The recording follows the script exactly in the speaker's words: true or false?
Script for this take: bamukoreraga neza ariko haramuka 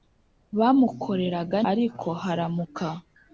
false